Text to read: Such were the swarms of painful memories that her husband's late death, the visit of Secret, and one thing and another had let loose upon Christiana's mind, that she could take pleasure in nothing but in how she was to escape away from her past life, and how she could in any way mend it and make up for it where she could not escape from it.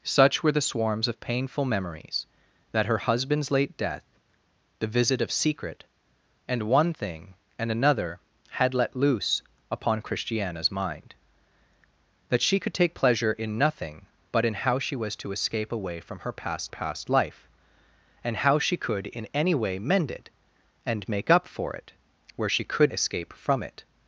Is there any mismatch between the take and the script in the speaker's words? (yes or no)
yes